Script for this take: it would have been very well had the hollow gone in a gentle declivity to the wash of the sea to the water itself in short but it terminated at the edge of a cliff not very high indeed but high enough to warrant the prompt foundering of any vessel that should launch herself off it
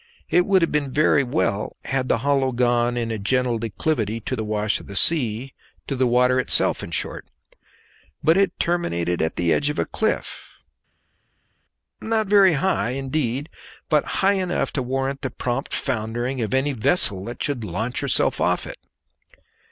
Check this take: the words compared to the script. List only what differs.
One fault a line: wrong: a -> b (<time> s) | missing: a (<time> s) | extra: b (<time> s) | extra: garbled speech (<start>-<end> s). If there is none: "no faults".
no faults